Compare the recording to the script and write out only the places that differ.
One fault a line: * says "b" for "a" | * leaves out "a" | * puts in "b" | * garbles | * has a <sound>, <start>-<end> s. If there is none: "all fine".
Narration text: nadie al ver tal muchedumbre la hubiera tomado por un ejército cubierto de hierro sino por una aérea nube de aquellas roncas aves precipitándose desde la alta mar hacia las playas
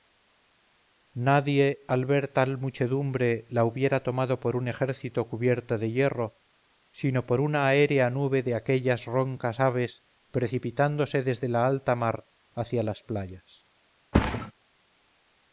* has a thud, 14.1-14.5 s